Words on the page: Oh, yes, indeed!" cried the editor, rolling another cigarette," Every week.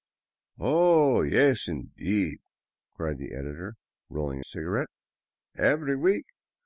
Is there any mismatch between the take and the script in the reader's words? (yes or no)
yes